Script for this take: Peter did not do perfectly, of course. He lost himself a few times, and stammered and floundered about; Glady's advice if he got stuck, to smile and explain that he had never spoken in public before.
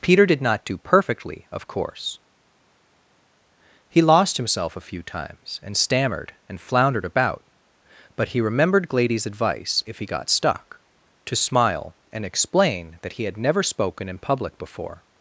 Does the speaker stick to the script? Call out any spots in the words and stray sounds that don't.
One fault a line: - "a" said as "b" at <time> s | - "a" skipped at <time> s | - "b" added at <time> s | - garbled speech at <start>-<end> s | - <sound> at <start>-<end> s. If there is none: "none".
- "but he remembered" added at 8.2 s